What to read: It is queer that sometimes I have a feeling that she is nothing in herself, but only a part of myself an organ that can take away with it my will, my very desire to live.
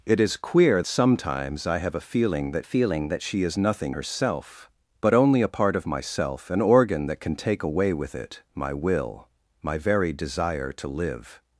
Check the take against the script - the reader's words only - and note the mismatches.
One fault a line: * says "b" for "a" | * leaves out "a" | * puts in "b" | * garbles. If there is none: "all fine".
* leaves out "that"
* puts in "feeling that"
* leaves out "in"